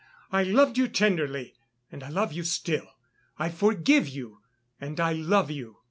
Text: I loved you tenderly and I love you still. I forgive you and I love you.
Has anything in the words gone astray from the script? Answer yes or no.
no